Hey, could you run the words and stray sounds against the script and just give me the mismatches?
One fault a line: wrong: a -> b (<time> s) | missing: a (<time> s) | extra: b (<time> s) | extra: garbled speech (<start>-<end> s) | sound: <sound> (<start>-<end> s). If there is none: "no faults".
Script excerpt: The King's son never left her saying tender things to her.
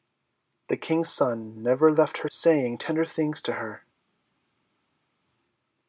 no faults